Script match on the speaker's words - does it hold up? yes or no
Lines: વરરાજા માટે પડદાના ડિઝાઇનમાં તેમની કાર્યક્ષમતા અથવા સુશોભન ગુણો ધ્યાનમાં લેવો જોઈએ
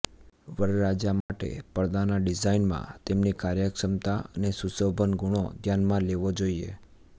no